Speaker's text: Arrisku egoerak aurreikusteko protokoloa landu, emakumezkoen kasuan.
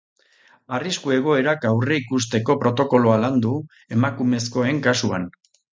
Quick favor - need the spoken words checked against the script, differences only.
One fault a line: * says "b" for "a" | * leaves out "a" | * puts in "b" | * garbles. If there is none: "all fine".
all fine